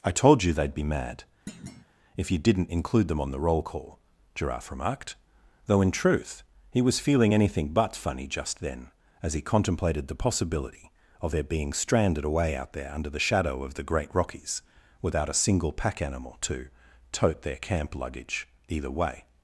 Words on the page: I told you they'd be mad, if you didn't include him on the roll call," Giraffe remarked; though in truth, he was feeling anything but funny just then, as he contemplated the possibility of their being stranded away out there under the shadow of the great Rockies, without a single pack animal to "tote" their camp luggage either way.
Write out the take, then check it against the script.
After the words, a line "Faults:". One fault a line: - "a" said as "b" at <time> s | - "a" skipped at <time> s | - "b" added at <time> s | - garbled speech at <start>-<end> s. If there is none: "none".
I told you they'd be mad, if you didn't include them on the roll call," Giraffe remarked; though in truth, he was feeling anything but funny just then, as he contemplated the possibility of their being stranded away out there under the shadow of the great Rockies, without a single pack animal to "tote" their camp luggage either way.
Faults:
- "him" said as "them" at 3.1 s